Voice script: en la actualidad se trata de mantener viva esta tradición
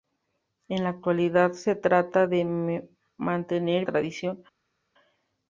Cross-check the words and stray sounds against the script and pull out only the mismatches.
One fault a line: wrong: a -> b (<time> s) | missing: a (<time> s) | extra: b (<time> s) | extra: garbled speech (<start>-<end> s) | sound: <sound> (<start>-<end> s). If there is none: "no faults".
missing: viva esta (3.8 s)